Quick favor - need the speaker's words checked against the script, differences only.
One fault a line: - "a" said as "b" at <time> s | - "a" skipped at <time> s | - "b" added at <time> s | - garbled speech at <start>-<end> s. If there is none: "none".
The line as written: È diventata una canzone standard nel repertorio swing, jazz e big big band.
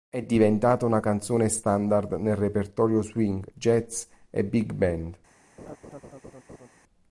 - "big" skipped at 4.7 s